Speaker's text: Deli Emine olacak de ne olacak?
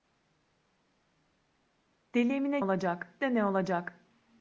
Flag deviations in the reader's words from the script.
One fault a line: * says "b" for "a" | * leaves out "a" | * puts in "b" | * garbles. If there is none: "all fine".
all fine